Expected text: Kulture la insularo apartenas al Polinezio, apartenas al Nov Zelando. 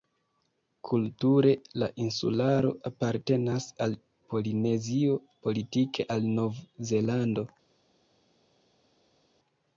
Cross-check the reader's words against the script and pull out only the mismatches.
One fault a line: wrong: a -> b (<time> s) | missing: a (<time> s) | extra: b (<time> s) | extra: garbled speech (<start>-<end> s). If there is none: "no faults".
wrong: apartenas -> politike (5.5 s)